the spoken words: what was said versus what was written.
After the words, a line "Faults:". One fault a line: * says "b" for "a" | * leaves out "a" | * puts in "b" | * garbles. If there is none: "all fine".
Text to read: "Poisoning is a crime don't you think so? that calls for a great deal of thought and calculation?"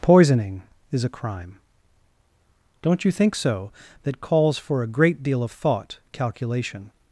"Poisoning is a crime don't you think so? that calls for a great deal of thought calculation?"
Faults:
* leaves out "and"